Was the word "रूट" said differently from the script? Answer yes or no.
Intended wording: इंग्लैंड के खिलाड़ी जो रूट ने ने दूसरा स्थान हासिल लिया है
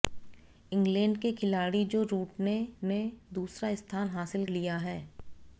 no